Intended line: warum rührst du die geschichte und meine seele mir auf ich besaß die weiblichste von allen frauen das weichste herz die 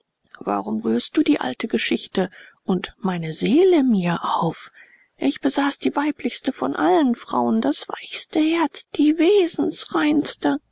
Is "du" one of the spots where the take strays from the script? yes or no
no